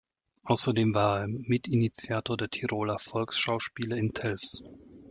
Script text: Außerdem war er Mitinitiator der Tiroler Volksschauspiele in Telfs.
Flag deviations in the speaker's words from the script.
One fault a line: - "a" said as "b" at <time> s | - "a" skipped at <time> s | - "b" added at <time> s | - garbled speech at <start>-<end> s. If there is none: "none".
none